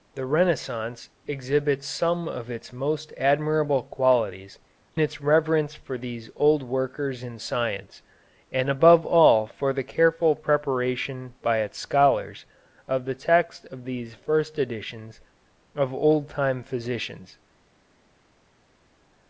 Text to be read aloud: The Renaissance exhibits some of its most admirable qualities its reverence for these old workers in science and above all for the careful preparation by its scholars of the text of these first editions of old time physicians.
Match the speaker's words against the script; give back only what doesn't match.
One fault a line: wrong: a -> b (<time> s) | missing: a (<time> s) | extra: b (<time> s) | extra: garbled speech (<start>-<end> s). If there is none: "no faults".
no faults